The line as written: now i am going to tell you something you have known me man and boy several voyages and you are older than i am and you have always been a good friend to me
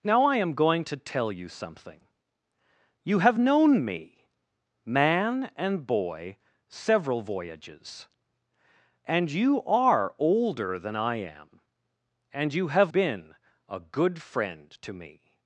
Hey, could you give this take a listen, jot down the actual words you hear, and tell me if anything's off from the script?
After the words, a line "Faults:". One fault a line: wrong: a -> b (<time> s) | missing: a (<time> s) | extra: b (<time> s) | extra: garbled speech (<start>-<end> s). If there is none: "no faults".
now i am going to tell you something you have known me man and boy several voyages and you are older than i am and you have been a good friend to me
Faults:
missing: always (12.9 s)